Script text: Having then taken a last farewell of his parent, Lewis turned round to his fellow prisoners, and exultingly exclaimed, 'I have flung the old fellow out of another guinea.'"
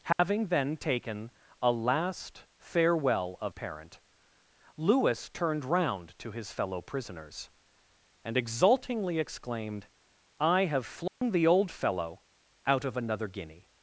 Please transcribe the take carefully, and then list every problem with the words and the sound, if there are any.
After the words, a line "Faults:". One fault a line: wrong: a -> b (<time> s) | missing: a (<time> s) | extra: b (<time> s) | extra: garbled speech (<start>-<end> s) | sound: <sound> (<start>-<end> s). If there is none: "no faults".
Having then taken a last farewell of parent, Lewis turned round to his fellow prisoners, and exultingly exclaimed, 'I have flung the old fellow out of another guinea.'"
Faults:
sound: dropout (0.1-0.2 s)
missing: his (3.5 s)
sound: dropout (11.1-11.2 s)